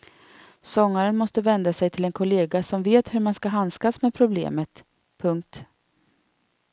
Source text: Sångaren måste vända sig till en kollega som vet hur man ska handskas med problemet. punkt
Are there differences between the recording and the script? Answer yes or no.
no